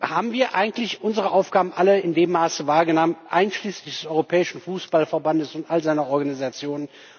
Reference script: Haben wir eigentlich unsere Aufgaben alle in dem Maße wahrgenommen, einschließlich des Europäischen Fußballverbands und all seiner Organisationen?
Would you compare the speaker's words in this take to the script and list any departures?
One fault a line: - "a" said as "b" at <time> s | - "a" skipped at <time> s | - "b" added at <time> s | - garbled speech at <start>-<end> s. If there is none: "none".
none